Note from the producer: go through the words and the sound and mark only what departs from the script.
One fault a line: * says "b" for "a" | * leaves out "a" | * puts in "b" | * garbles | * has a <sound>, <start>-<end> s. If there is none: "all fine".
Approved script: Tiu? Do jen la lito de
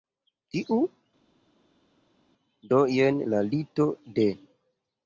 all fine